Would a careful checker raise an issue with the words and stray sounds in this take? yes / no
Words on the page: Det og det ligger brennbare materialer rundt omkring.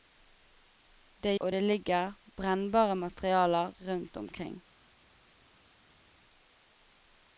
no